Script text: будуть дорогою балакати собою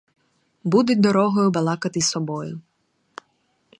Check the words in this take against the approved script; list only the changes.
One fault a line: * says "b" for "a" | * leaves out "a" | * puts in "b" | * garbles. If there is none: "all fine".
all fine